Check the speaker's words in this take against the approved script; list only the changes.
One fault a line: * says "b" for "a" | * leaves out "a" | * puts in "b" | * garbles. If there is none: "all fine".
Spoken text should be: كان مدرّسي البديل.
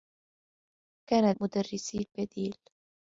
all fine